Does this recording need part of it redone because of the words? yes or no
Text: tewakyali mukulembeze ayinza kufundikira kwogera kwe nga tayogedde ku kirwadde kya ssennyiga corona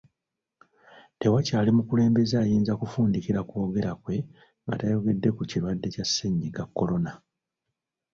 no